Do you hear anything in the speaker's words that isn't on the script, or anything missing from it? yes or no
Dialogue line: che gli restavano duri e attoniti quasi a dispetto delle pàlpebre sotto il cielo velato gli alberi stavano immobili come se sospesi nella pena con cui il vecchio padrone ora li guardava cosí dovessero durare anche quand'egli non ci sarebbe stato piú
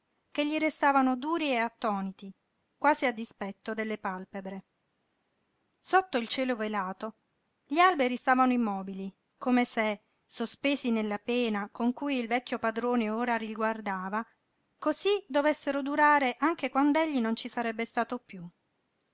no